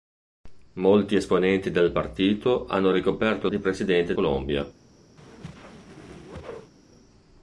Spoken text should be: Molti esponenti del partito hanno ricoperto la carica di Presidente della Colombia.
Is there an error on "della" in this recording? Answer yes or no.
yes